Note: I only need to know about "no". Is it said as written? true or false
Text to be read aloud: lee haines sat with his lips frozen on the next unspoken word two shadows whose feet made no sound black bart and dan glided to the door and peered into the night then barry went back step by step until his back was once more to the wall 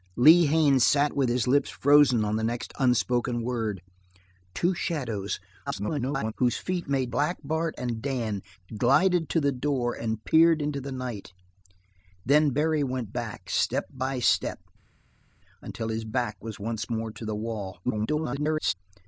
false